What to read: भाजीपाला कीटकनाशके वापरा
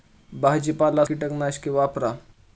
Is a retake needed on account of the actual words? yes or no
no